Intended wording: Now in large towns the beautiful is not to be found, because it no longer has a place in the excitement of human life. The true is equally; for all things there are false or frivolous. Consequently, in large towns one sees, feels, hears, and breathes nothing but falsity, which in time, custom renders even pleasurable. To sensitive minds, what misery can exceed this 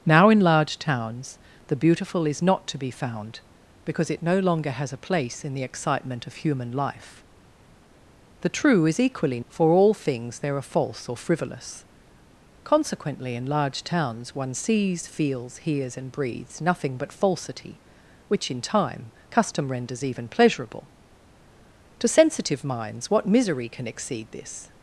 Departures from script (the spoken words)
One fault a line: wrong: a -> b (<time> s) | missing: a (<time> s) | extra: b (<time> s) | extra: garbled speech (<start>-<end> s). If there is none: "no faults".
no faults